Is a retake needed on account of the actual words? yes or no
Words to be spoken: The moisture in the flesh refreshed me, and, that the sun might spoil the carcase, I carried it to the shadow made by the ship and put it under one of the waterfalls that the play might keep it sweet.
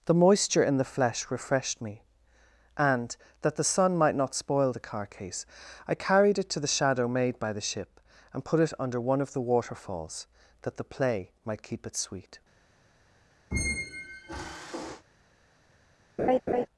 yes